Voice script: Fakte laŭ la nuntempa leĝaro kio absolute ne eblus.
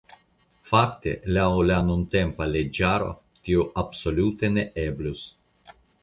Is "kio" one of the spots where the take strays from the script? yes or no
yes